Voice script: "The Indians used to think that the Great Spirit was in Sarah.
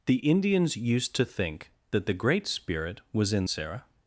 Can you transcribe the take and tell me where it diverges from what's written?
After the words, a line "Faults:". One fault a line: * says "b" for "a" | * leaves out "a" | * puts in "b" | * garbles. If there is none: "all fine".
"The Indians used to think that the Great Spirit was in Sarah.
Faults:
all fine